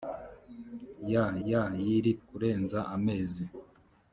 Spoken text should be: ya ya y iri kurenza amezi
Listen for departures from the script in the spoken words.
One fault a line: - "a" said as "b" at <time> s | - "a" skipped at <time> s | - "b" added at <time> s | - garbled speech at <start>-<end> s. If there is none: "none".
none